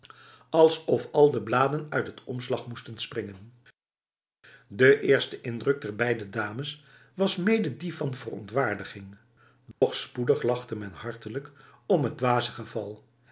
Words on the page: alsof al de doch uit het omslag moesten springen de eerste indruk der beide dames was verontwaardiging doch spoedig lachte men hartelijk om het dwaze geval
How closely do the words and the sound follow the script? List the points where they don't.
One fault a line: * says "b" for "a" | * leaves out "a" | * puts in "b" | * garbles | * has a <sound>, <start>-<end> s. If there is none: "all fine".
* says "bladen" for "doch"
* puts in "mede die van"
* has a dropout, 9.7-9.8 s